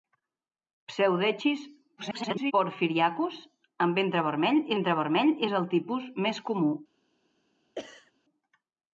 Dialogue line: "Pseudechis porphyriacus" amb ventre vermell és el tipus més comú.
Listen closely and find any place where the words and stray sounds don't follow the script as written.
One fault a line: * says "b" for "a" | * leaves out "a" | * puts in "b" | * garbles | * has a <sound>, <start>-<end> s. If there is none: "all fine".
* garbles
* puts in "ventre vermell"
* has a sneeze, 7.8-8.1 s